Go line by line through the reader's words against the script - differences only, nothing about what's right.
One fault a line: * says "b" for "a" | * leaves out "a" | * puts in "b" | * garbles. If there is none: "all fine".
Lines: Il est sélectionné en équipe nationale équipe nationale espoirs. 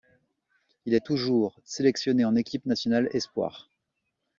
* puts in "toujours"
* leaves out "équipe nationale"